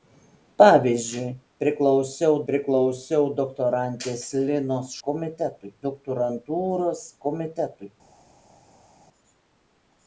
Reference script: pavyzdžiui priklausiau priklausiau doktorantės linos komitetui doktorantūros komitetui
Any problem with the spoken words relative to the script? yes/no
no